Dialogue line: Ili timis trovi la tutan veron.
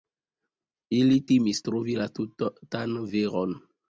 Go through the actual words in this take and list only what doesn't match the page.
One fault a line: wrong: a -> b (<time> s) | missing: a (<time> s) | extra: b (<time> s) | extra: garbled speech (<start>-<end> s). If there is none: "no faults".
no faults